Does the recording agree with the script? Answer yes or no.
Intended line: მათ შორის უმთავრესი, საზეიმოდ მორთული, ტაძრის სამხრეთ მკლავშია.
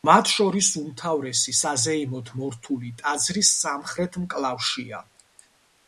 yes